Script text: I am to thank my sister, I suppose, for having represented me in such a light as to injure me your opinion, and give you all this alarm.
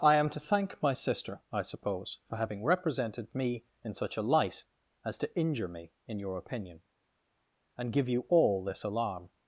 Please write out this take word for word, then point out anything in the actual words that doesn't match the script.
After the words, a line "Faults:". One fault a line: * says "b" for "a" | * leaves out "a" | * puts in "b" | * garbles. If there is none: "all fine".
I am to thank my sister, I suppose, for having represented me in such a light as to injure me in your opinion, and give you all this alarm.
Faults:
* puts in "in"